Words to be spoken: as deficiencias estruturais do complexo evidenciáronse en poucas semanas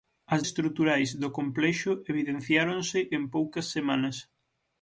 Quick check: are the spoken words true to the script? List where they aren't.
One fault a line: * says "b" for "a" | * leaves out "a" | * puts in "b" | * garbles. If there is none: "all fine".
* leaves out "deficiencias"